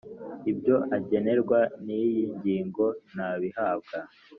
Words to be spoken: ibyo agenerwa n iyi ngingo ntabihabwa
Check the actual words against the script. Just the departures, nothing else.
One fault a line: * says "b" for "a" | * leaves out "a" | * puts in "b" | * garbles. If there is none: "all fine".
all fine